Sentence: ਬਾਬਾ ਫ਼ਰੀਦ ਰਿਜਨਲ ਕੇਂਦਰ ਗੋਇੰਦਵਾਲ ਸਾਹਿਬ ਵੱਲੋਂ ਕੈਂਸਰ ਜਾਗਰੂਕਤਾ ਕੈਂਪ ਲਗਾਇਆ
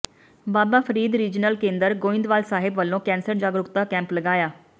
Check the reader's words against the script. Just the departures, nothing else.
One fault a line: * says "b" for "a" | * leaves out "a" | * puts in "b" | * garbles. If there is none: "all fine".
all fine